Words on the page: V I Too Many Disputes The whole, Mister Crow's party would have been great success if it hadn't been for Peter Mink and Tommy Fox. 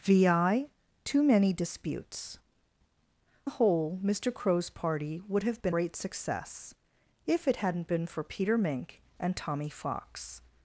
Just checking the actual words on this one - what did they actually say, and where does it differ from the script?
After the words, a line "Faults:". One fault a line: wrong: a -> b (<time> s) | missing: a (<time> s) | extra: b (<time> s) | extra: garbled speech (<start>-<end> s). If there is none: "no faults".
V I Too Many Disputes The whole, Mister Crow's party would have been great success if it hadn't been for Peter Mink and Tommy Fox.
Faults:
no faults